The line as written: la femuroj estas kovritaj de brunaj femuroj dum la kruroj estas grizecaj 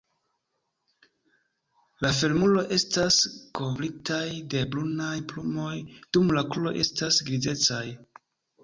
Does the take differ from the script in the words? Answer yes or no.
yes